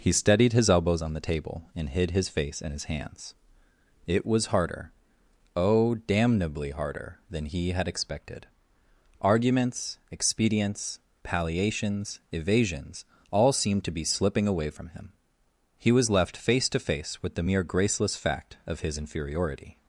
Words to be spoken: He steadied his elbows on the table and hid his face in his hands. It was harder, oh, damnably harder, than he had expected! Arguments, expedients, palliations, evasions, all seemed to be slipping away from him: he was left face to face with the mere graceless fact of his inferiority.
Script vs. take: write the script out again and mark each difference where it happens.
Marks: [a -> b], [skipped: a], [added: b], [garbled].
He steadied his elbows on the table and hid his face in his hands. It was harder, oh, damnably harder, than he had expected! Arguments, expedients, palliations, evasions, all seemed to be slipping away from him: he was left face to face with the mere graceless fact of his inferiority.